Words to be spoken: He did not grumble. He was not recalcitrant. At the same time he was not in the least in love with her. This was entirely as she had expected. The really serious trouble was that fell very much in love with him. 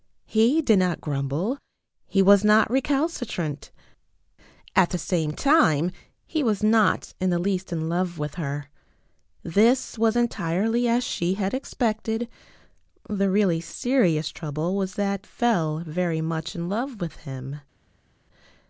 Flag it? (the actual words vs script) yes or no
no